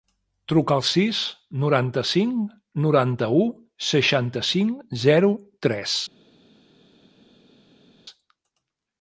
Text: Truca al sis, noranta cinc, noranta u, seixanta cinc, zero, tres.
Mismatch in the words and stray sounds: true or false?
false